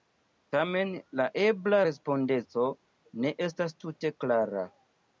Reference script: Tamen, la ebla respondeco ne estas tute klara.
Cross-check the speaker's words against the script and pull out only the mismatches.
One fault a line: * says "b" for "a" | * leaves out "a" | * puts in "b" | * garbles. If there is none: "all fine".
all fine